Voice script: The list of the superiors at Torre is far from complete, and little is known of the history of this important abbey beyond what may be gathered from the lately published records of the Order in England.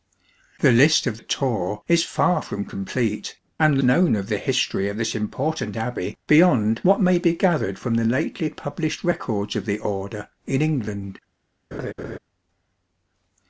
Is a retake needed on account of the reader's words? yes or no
yes